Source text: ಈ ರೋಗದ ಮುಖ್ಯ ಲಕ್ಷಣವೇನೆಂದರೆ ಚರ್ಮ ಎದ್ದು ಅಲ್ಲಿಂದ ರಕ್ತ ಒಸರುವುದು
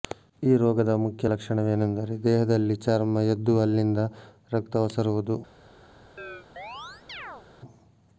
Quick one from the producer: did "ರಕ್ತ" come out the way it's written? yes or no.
yes